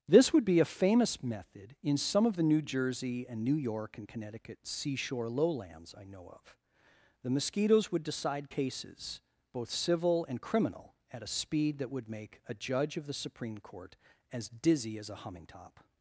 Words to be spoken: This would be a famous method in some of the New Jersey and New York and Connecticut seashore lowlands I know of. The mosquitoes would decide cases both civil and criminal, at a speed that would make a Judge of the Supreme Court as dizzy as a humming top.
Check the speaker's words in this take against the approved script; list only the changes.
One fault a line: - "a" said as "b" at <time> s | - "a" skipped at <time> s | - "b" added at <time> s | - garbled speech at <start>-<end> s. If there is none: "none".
none